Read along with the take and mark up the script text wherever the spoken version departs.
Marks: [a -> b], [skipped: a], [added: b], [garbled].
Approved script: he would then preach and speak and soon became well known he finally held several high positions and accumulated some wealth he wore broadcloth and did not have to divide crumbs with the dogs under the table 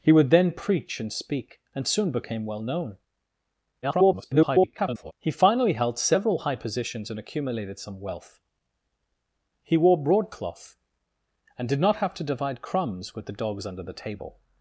he would then preach and speak and soon became well known [garbled] he finally held several high positions and accumulated some wealth he wore broadcloth and did not have to divide crumbs with the dogs under the table